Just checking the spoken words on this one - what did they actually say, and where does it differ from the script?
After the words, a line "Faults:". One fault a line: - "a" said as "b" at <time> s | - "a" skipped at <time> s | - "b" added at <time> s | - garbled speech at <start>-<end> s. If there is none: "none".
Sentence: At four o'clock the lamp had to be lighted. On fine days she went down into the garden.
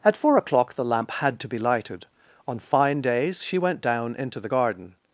At four o'clock the lamp had to be lighted. On fine days she went down into the garden.
Faults:
none